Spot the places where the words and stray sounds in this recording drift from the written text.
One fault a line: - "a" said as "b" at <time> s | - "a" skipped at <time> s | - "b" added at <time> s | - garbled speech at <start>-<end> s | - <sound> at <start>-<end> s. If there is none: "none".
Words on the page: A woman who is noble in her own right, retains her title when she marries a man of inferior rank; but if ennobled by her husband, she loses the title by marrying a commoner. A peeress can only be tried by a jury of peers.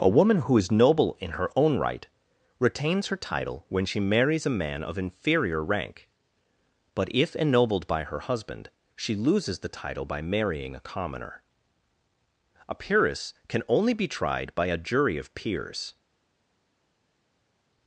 none